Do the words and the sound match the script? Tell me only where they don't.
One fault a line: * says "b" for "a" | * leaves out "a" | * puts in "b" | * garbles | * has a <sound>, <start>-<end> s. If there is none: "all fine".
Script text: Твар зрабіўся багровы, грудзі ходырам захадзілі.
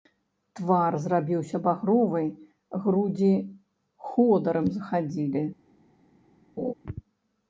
* has a laugh, 6.6-6.7 s